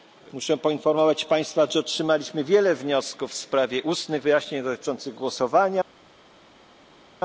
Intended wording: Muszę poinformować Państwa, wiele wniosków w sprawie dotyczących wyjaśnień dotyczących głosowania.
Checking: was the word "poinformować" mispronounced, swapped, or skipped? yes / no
no